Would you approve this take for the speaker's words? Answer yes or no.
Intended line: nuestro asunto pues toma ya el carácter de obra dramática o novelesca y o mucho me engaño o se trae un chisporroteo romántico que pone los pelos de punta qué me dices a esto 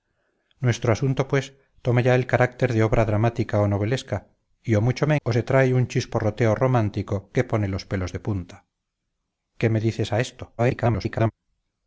no